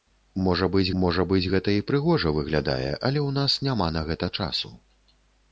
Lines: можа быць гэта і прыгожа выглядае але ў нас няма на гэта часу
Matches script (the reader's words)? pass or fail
fail